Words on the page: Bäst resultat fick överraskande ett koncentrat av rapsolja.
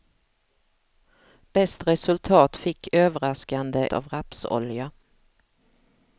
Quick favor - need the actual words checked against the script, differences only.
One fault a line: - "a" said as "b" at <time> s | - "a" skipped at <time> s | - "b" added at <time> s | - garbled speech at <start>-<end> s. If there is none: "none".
- "ett koncentrat" skipped at 3.9 s